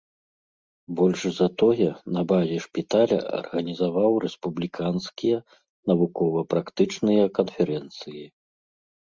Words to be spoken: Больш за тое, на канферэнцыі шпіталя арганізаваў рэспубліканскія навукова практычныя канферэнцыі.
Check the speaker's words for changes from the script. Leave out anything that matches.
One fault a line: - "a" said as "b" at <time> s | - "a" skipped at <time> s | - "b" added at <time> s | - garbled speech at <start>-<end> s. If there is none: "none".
- "канферэнцыі" said as "базе" at 2.3 s